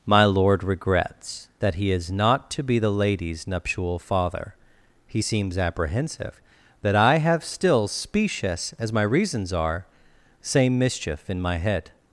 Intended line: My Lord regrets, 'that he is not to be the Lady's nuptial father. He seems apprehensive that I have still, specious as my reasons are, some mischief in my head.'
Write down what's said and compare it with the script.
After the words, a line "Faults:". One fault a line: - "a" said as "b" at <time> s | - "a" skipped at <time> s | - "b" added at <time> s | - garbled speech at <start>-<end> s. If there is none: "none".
My Lord regrets, 'that he is not to be the Lady's nuptial father. He seems apprehensive that I have still, specious as my reasons are, same mischief in my head.'
Faults:
- "some" said as "same" at 10.4 s